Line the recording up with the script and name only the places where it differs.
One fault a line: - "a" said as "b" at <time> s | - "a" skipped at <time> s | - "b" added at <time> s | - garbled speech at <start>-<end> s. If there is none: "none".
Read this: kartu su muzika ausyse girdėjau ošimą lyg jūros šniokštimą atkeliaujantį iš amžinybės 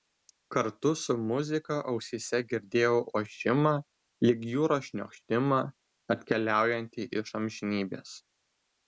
none